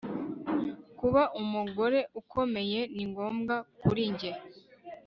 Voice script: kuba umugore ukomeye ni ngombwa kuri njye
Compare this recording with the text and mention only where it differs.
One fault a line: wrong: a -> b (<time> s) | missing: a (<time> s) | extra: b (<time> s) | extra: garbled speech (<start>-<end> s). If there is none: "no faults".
no faults